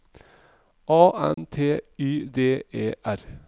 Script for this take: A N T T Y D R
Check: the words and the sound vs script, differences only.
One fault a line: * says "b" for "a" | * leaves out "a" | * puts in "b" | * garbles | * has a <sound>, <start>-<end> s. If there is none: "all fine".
* has a dropout, 1.3-1.4 s
* leaves out "T"
* puts in "E"